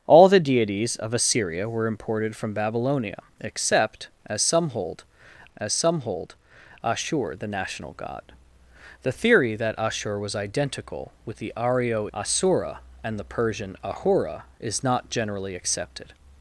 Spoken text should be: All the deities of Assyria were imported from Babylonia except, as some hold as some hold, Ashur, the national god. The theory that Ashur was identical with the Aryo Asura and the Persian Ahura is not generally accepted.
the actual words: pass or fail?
pass